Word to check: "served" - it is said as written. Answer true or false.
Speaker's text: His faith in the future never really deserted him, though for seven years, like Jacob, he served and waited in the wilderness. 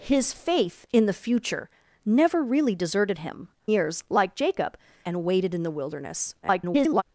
false